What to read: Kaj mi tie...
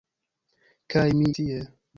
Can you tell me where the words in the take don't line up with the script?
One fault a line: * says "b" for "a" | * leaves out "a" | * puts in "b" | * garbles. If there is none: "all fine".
all fine